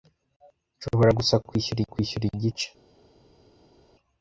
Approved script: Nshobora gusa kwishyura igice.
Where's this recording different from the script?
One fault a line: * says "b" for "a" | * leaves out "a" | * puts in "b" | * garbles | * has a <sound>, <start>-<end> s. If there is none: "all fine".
* puts in "kwishyura"